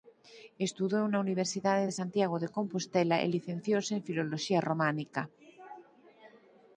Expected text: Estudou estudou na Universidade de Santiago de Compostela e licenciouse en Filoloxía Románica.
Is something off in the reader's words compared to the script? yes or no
yes